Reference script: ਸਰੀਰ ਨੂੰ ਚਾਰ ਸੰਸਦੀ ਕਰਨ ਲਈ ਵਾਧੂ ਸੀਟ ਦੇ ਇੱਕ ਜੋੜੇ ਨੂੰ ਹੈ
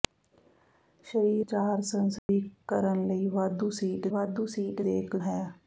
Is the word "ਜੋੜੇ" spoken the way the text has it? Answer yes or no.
no